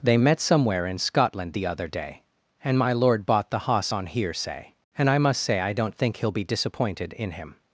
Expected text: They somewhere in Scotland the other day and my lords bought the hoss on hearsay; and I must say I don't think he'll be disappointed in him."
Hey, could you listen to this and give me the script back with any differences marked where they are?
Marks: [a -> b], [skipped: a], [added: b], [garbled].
They [added: met] somewhere in Scotland the other day and my [lords -> lord] bought the hoss on hearsay; and I must say I don't think he'll be disappointed in him."